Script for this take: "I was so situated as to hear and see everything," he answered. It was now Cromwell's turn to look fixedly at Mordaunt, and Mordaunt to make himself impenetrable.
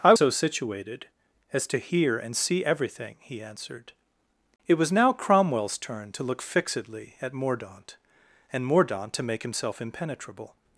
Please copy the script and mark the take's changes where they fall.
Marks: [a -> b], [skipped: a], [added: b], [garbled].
"I [skipped: was] so situated as to hear and see everything," he answered. It was now Cromwell's turn to look fixedly at Mordaunt, and Mordaunt to make himself impenetrable.